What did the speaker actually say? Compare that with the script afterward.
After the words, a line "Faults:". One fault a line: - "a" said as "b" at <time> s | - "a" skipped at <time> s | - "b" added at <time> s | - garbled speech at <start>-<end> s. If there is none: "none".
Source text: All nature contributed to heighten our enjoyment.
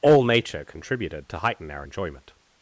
All nature contributed to heighten our enjoyment.
Faults:
none